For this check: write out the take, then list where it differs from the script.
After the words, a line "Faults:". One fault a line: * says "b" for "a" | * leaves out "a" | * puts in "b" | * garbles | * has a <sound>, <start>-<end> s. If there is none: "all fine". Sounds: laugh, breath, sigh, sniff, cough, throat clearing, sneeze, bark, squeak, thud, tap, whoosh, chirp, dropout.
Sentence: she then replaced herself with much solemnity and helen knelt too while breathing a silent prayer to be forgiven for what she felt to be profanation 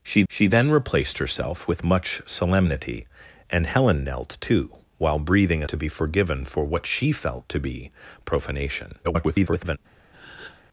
she she then replaced herself with much solemnity and helen knelt too while breathing a to be forgiven for what she felt to be profanation [garbled]
Faults:
* puts in "she"
* leaves out "silent prayer"
* garbles
* has a breath, 10.1-10.6 s